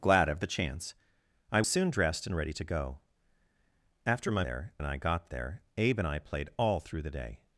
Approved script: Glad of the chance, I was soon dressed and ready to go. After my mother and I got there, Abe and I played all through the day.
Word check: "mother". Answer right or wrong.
wrong